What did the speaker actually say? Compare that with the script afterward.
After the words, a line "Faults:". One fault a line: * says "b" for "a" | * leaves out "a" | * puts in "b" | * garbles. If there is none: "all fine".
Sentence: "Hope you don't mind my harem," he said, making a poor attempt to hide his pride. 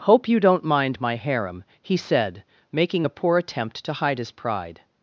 "Hope you don't mind my harem," he said, making a poor attempt to hide his pride.
Faults:
all fine